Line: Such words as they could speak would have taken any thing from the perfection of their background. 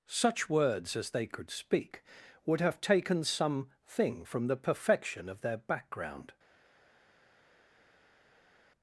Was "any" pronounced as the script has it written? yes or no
no